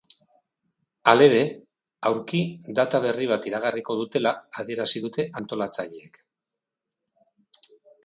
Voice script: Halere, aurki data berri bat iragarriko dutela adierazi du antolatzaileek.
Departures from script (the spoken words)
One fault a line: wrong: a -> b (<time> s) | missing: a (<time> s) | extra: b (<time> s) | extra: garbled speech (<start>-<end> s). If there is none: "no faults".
wrong: du -> dute (5.1 s)